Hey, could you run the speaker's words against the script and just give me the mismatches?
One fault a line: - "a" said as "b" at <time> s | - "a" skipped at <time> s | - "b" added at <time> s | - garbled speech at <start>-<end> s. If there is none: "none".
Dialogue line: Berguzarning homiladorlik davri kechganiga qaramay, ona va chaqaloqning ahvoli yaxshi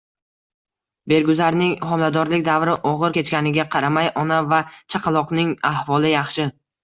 - "og‘ir" added at 2.9 s